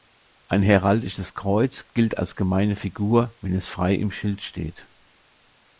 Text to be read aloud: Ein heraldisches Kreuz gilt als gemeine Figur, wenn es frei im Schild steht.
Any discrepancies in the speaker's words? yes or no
no